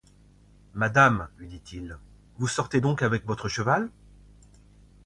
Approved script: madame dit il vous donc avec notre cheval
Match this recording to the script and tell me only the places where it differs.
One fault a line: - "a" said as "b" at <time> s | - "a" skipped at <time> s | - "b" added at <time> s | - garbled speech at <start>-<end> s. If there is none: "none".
- "lui" added at 1.4 s
- "sortez" added at 2.5 s
- "notre" said as "votre" at 3.2 s